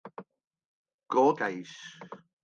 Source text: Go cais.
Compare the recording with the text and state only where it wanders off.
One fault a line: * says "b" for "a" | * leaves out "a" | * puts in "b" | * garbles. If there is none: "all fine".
all fine